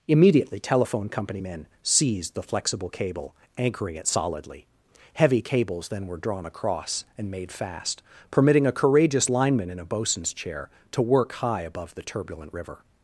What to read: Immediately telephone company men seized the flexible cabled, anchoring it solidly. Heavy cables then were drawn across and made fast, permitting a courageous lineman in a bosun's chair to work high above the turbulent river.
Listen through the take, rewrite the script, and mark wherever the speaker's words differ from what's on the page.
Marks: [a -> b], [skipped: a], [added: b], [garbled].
Immediately telephone company men seized the flexible [cabled, -> cable] anchoring it solidly. Heavy cables then were drawn across and made fast, permitting a courageous lineman in a bosun's chair to work high above the turbulent river.